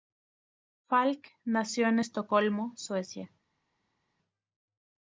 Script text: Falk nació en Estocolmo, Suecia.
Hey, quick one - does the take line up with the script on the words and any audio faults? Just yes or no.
yes